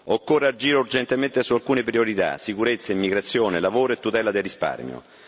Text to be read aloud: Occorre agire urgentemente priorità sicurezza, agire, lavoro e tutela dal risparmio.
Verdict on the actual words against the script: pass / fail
fail